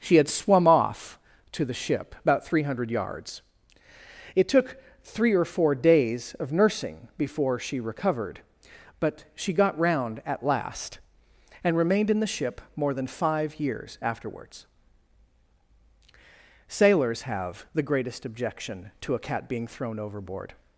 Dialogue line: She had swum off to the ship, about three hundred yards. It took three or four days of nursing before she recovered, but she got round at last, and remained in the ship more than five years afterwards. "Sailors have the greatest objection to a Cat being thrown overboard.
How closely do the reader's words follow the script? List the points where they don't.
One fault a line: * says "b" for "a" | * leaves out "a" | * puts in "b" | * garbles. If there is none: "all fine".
all fine